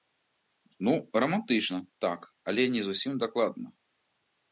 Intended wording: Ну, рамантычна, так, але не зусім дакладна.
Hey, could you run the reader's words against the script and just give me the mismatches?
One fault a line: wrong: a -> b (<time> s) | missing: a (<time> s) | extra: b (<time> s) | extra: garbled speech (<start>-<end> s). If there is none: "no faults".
no faults